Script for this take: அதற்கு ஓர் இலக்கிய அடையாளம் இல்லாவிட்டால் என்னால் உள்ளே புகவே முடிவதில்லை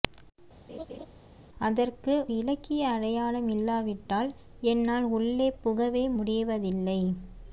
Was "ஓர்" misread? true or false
true